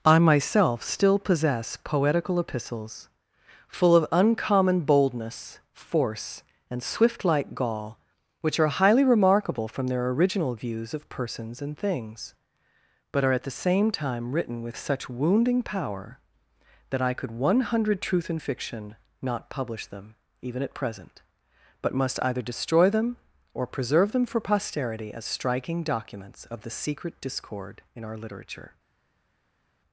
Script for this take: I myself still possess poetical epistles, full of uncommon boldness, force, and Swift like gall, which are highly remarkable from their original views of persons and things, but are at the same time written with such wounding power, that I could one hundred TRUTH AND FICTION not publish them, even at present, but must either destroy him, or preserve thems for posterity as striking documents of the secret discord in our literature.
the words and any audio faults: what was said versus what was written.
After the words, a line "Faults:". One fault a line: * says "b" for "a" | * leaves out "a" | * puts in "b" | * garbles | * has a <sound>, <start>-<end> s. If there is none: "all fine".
I myself still possess poetical epistles, full of uncommon boldness, force, and Swift like gall, which are highly remarkable from their original views of persons and things, but are at the same time written with such wounding power, that I could one hundred TRUTH AND FICTION not publish them, even at present, but must either destroy them, or preserve them for posterity as striking documents of the secret discord in our literature.
Faults:
* says "them" for "him"
* says "them" for "thems"